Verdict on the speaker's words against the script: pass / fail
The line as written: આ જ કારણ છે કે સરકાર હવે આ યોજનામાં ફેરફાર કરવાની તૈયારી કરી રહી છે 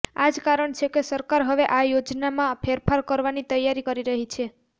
pass